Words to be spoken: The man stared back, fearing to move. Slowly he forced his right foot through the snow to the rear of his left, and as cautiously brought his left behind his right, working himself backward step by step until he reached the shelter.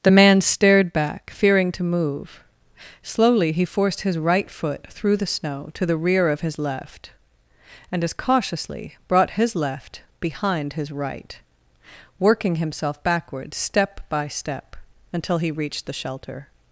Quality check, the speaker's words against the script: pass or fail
pass